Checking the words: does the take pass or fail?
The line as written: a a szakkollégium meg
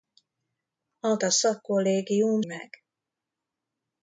pass